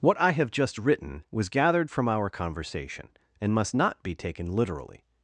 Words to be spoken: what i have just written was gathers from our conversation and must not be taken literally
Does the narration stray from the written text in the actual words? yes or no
yes